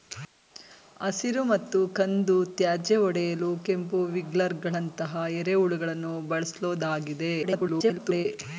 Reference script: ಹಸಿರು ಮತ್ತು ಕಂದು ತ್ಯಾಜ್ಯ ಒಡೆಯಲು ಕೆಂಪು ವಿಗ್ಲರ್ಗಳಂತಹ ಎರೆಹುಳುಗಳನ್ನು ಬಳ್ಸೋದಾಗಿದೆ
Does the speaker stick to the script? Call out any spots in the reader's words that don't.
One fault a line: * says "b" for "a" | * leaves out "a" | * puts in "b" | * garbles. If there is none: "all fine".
* garbles